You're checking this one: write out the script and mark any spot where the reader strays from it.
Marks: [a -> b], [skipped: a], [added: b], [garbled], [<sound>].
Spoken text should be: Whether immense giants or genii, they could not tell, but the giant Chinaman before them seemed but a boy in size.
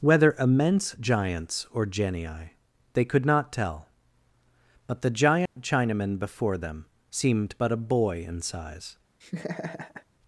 Whether immense giants or genii, they could not tell, but the giant [dropout] Chinaman before them seemed but a boy in size. [laugh]